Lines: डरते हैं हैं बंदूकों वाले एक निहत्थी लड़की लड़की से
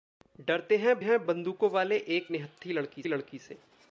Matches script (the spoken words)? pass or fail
pass